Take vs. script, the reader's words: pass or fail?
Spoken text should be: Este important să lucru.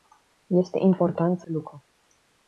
pass